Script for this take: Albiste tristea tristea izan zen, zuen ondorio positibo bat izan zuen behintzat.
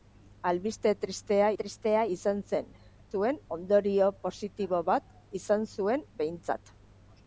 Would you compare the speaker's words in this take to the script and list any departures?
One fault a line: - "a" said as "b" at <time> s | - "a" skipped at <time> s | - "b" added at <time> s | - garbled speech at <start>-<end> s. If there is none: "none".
none